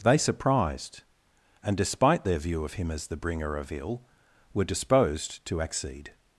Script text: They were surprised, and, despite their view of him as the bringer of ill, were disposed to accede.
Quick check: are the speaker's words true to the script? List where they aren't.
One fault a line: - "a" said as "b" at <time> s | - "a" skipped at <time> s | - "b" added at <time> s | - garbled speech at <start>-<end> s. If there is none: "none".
- "were" skipped at 0.2 s